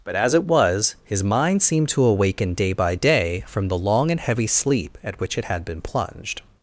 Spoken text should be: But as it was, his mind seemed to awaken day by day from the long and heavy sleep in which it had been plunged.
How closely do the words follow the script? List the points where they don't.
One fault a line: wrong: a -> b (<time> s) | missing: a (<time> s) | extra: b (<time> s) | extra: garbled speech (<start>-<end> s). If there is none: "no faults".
wrong: in -> at (5.0 s)